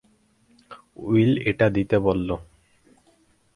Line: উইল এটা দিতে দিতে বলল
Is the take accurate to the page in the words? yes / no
no